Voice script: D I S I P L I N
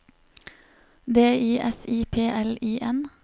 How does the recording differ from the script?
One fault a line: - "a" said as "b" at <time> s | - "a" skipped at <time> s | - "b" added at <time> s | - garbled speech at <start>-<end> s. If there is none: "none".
none